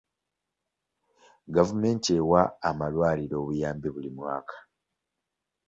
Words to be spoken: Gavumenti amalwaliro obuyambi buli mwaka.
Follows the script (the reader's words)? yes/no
no